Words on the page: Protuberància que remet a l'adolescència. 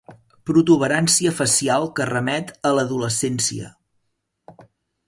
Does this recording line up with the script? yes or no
no